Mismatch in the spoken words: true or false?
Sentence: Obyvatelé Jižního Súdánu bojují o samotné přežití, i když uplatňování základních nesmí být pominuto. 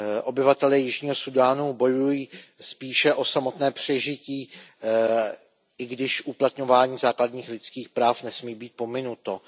true